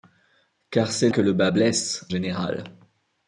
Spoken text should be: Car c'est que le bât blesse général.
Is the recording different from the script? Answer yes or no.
no